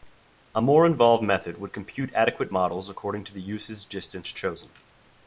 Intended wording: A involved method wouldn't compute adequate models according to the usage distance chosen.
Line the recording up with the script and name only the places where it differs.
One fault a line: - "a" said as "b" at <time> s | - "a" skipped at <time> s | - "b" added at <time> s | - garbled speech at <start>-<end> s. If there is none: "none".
- "more" added at 0.6 s
- "wouldn't" said as "would" at 1.6 s